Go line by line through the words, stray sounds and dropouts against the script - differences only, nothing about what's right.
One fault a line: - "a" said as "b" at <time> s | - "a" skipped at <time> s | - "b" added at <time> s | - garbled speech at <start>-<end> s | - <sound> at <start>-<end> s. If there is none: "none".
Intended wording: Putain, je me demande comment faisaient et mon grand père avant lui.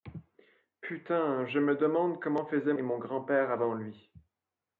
none